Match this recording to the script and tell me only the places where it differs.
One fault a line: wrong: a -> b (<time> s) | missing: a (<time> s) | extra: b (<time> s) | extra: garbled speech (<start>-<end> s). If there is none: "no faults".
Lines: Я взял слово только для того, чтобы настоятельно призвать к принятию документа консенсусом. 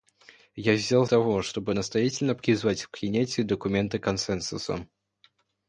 missing: слово только для (1.1 s)